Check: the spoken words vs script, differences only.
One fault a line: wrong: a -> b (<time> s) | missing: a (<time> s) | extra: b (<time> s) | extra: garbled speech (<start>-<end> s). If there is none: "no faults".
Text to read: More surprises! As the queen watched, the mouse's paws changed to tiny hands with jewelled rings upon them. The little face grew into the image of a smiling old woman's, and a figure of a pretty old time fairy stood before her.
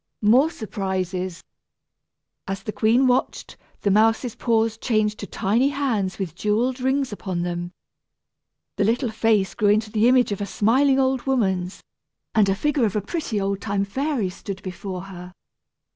no faults